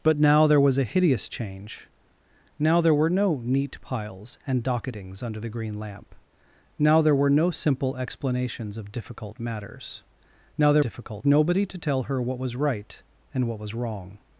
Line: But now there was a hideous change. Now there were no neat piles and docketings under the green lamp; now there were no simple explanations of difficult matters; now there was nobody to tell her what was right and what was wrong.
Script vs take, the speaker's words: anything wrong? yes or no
yes